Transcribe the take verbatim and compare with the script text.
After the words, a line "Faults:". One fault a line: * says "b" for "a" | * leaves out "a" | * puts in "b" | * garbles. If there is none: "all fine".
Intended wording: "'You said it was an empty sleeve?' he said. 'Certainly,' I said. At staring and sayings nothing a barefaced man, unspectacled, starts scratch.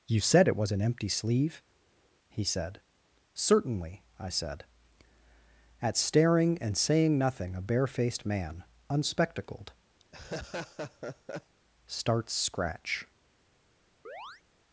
"'You said it was an empty sleeve?' he said. 'Certainly,' I said. At staring and saying nothing a barefaced man, unspectacled, starts scratch.
Faults:
* says "saying" for "sayings"